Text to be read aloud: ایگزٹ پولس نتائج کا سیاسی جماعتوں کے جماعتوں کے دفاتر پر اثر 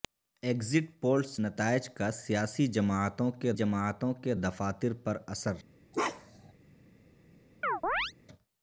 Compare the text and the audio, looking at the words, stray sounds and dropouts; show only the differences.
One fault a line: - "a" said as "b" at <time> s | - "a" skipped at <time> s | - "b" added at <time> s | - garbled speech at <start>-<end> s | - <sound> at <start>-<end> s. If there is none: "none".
- bark at 5.9-6.5 s
- chirp at 7.6-8.1 s